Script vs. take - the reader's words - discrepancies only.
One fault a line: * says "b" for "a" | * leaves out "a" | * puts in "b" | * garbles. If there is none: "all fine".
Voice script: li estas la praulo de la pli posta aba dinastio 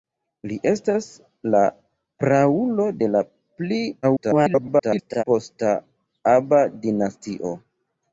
* garbles